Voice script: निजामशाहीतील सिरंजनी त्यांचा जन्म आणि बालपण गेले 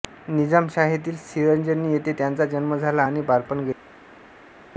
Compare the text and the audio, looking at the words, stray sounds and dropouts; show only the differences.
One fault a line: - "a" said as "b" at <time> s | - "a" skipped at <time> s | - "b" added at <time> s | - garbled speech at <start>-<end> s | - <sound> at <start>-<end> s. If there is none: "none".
- "येथे" added at 1.9 s
- "झाला" added at 2.8 s